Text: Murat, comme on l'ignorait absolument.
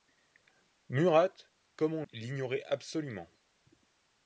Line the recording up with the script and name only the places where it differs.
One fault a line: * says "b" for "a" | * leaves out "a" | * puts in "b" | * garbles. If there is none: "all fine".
all fine